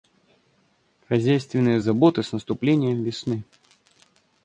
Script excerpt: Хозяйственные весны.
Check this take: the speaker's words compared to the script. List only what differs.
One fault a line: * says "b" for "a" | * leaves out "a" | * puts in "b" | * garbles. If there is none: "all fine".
* puts in "заботы с наступлением"